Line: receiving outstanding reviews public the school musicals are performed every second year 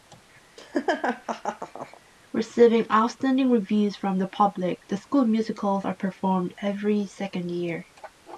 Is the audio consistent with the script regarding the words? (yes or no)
no